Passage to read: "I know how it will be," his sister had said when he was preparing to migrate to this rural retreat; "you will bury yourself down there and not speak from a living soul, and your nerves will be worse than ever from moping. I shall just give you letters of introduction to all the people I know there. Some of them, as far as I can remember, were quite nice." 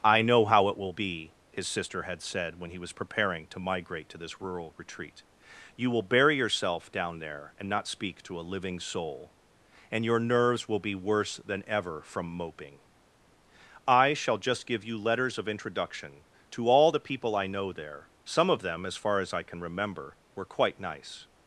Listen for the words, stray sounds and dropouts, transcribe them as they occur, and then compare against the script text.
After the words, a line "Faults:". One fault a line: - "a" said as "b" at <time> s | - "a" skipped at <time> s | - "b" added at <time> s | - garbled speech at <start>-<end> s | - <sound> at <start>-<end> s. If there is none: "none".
"I know how it will be," his sister had said when he was preparing to migrate to this rural retreat; "you will bury yourself down there and not speak to a living soul, and your nerves will be worse than ever from moping. I shall just give you letters of introduction to all the people I know there. Some of them, as far as I can remember, were quite nice."
Faults:
- "from" said as "to" at 8.2 s